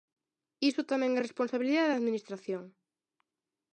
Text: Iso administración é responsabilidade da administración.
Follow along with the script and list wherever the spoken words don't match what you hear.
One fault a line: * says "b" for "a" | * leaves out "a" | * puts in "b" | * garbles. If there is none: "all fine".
* says "tamén" for "administración"